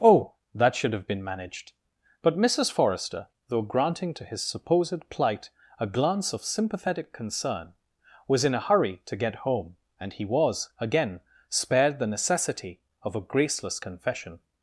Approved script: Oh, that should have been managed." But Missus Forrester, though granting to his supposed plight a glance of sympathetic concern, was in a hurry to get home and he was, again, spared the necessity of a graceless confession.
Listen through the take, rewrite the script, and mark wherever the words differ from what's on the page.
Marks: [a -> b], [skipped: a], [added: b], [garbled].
Oh, that should have been managed." But Missus Forrester, though granting to his supposed plight a glance of sympathetic concern, was in a hurry to get home and he was, again, spared the necessity of a graceless confession.